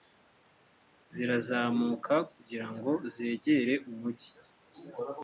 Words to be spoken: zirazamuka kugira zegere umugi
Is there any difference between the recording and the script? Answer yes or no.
yes